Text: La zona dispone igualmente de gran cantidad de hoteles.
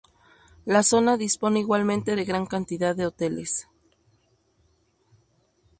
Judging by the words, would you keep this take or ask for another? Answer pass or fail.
pass